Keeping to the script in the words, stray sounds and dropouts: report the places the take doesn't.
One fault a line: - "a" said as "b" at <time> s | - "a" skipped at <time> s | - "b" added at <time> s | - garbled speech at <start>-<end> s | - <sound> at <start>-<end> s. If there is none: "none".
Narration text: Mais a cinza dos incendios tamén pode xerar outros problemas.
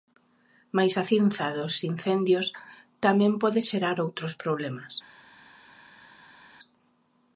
none